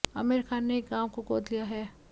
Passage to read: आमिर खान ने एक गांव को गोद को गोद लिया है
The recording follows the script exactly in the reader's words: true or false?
false